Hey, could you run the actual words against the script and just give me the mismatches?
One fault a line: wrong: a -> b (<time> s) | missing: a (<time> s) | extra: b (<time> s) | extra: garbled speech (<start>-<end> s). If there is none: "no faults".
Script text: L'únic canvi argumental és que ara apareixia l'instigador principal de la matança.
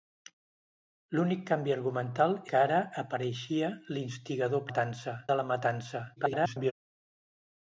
missing: és (2.3 s)
wrong: principal -> matança (4.7 s)
extra: garbled speech (6.2-6.7 s)